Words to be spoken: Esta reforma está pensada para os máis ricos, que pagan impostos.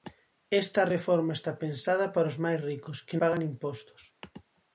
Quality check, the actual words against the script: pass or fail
pass